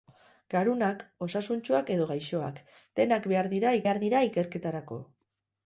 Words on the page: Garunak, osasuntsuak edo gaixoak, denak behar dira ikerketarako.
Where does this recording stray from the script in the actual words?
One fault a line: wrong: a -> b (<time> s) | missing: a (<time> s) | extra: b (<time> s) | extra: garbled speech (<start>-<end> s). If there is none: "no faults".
extra: behar dira (3.9 s)